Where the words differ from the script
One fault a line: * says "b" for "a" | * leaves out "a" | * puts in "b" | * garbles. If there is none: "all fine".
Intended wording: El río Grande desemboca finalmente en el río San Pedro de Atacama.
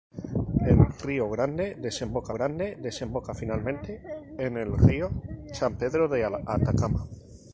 * puts in "Grande desemboca"